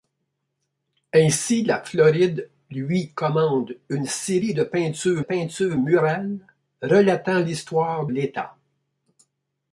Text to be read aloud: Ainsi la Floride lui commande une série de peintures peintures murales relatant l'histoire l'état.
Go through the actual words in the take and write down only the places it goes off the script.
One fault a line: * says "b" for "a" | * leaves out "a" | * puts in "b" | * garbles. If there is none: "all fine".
all fine